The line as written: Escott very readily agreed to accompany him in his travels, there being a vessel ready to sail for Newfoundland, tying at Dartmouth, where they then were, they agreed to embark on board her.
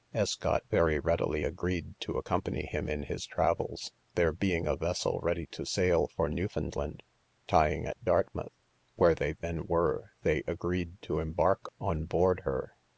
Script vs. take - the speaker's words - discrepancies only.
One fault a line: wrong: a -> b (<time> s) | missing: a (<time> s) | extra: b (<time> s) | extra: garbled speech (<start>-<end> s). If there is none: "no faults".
no faults